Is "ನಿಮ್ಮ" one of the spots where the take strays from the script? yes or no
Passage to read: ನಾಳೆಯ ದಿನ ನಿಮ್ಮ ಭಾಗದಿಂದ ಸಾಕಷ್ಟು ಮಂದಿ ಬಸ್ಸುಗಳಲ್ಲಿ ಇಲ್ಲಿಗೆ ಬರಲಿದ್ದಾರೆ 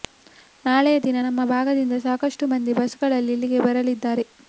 yes